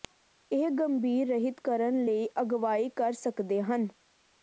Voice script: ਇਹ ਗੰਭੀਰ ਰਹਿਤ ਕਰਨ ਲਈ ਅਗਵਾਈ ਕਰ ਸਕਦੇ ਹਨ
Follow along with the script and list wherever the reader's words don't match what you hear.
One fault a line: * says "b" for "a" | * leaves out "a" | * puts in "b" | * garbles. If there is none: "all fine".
all fine